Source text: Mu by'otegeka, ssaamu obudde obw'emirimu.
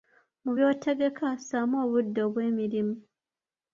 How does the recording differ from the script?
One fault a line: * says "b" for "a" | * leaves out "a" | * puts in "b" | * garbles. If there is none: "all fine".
all fine